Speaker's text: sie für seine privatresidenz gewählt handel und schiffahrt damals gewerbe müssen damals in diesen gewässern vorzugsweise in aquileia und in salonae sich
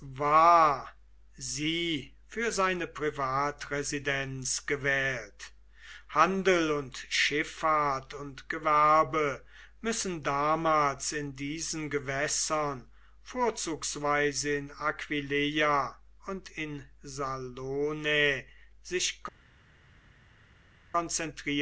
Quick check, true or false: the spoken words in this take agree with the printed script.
false